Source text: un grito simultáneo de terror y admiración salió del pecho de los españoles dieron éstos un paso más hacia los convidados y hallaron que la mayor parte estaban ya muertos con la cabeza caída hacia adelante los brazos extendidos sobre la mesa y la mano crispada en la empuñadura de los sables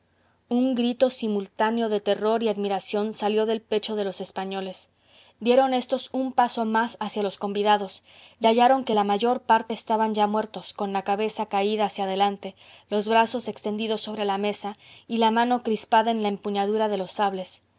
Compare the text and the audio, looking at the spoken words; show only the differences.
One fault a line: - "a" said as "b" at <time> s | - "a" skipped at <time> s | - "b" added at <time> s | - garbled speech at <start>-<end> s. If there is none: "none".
none